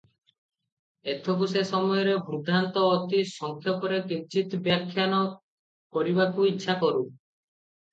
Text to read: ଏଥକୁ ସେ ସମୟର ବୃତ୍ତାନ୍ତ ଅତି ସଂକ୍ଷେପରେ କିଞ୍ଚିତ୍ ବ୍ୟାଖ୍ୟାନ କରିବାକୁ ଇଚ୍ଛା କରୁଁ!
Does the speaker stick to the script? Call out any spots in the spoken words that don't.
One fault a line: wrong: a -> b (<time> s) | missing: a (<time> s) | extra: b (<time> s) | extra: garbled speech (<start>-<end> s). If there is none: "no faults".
no faults